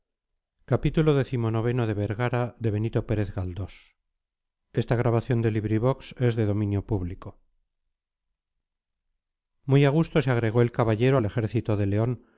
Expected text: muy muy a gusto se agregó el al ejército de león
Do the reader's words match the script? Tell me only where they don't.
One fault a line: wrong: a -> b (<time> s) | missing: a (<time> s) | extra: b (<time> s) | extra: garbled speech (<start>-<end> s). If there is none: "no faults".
missing: muy (9.8 s)
extra: caballero (10.7 s)